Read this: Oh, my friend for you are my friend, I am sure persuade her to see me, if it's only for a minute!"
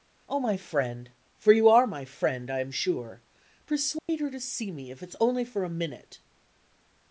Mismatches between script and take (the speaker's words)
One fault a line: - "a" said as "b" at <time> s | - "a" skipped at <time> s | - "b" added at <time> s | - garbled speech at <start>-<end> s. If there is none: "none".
none